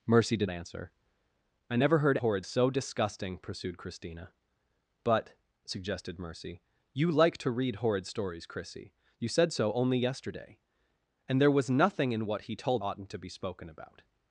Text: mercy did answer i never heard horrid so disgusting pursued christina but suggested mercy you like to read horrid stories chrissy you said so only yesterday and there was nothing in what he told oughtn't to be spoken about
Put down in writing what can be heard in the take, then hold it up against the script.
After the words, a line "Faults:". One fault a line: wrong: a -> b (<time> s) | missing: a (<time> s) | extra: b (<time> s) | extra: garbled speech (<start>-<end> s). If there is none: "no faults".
mercy did answer i never heard horrid so disgusting pursued christina but suggested mercy you like to read horrid stories chrissy you said so only yesterday and there was nothing in what he told oughtn't to be spoken about
Faults:
no faults